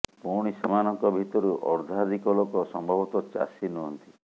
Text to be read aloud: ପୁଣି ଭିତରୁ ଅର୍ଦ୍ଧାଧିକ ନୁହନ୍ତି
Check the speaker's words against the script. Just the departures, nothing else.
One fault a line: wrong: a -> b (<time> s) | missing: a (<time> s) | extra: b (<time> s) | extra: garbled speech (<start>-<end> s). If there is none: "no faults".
extra: ସେମାନଙ୍କ (0.5 s)
extra: ଲୋକ ସମ୍ଭବତଃ ଚାଷୀ (2.4 s)